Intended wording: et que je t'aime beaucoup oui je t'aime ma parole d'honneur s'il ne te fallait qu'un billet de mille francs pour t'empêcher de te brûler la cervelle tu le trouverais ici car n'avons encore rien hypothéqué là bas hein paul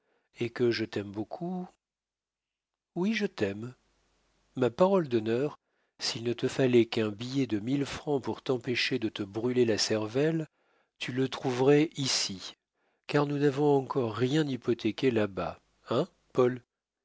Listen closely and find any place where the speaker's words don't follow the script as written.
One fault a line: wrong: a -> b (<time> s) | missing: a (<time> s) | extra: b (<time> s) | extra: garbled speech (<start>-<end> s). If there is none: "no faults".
extra: nous (13.3 s)